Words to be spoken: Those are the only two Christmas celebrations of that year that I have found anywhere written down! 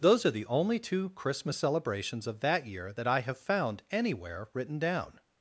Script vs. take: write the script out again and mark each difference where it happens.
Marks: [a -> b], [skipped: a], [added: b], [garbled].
Those are the only two Christmas celebrations of that year that I have found anywhere written down!